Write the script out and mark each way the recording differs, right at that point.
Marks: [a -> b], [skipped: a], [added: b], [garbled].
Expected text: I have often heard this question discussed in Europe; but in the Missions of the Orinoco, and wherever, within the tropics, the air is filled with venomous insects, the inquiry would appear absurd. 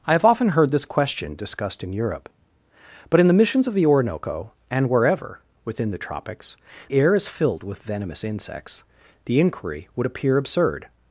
I have often heard this question discussed in Europe; but in the Missions of the Orinoco, and wherever, within the tropics, [skipped: the] air is filled with venomous insects, the inquiry would appear absurd.